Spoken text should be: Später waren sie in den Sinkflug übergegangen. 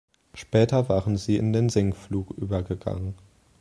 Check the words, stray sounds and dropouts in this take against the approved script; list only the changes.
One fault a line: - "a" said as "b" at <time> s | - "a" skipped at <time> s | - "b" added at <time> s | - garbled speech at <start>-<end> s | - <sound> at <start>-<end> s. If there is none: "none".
none